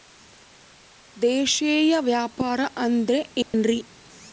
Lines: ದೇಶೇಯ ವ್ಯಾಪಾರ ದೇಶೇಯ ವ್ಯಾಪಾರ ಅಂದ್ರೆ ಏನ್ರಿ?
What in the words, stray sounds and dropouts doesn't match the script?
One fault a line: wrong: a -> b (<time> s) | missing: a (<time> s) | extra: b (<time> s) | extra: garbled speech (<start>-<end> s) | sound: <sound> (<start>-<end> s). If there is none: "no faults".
missing: ದೇಶೇಯ ವ್ಯಾಪಾರ (2.6 s)
sound: dropout (3.4-3.5 s)